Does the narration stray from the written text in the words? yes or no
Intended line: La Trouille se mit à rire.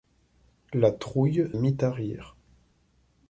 yes